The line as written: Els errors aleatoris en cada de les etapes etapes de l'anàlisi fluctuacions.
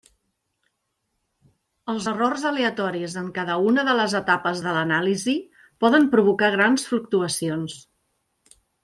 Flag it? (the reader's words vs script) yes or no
yes